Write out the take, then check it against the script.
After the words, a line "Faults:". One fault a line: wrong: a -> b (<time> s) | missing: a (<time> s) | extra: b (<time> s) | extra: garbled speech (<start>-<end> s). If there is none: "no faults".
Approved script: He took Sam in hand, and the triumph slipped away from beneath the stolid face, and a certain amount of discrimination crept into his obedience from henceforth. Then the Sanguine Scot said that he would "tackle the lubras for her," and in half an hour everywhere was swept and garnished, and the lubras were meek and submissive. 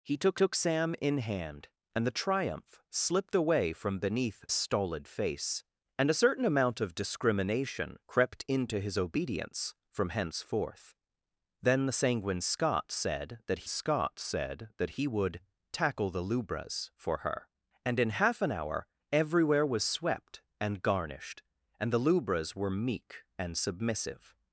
He took took Sam in hand, and the triumph slipped away from beneath stolid face, and a certain amount of discrimination crept into his obedience from henceforth. Then the Sanguine Scot said that Scot said that he would "tackle the lubras for her," and in half an hour everywhere was swept and garnished, and the lubras were meek and submissive.
Faults:
extra: took (0.3 s)
missing: the (4.4 s)
extra: Scot said that (13.7 s)